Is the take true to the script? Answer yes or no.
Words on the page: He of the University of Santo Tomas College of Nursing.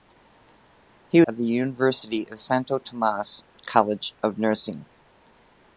yes